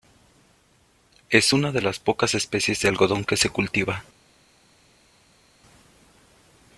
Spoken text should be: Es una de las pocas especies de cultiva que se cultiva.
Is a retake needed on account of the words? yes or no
yes